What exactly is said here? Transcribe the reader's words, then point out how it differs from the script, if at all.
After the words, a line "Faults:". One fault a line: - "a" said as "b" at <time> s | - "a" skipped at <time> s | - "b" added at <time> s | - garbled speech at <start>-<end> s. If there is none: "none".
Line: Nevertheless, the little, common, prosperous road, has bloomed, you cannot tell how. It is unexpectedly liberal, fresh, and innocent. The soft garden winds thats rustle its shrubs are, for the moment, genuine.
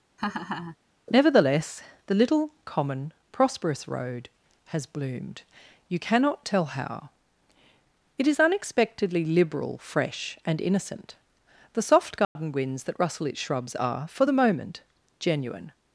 Nevertheless, the little, common, prosperous road, has bloomed, you cannot tell how. It is unexpectedly liberal, fresh, and innocent. The soft garden winds that rustle its shrubs are, for the moment, genuine.
Faults:
- "thats" said as "that" at 12.8 s